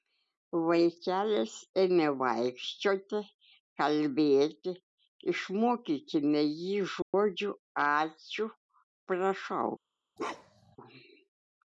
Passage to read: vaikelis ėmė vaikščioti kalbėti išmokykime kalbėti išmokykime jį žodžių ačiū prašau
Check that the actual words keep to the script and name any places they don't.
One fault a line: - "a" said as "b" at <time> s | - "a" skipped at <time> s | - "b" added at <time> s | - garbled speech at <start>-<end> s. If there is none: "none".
- "kalbėti išmokykime" skipped at 6.5 s